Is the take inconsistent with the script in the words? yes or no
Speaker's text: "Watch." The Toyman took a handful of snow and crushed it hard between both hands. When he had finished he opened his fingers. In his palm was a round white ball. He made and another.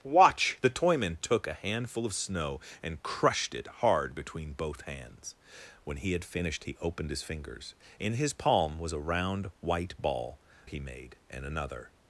no